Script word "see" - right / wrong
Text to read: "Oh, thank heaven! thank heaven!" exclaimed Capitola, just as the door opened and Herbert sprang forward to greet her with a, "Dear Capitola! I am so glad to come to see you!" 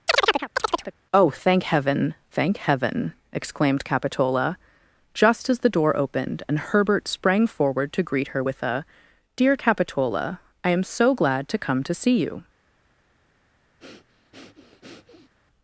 right